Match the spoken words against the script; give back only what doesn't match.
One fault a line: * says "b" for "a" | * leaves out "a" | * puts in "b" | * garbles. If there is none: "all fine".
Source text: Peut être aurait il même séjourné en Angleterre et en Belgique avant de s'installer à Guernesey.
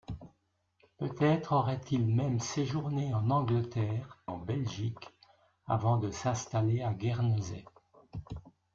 * leaves out "et"